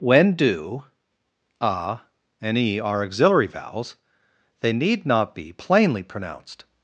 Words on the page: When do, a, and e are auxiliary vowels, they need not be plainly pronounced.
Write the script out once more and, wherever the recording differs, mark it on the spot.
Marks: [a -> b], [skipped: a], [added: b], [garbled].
When do, a, and e are auxiliary vowels, they need not be plainly pronounced.